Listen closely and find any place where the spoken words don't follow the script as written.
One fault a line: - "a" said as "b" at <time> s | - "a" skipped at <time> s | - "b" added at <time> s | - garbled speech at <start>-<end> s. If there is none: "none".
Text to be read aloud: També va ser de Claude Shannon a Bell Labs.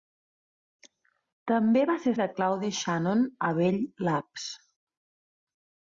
none